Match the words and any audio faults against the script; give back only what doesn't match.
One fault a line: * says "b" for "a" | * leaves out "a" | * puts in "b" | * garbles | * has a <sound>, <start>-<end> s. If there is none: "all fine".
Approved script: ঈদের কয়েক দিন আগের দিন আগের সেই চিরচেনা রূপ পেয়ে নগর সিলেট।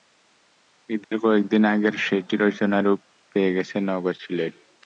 * has a dropout, 1.0-1.1 s
* leaves out "দিন আগের"
* puts in "গেছে"